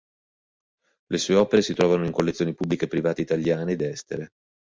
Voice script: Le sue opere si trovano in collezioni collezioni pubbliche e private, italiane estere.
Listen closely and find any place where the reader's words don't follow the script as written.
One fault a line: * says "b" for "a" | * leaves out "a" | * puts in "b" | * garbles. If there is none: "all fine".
* leaves out "collezioni"
* puts in "ed"